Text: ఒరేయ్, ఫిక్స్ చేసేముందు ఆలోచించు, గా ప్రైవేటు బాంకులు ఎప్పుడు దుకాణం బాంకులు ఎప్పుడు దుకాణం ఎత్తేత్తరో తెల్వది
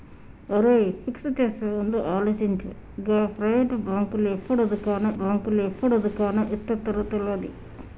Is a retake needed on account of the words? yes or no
no